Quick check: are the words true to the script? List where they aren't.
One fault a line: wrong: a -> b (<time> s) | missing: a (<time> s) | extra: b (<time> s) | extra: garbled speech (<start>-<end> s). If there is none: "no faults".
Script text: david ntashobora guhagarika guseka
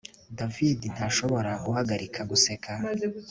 no faults